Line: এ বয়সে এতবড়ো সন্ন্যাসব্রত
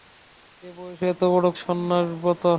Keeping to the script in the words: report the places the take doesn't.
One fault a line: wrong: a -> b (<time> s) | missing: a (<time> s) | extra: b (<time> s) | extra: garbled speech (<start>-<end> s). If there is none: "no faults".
no faults